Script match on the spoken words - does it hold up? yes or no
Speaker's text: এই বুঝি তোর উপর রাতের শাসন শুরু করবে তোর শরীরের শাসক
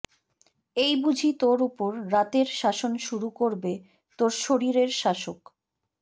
yes